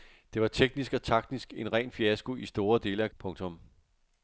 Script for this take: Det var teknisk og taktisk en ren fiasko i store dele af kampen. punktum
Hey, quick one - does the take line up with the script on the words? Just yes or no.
no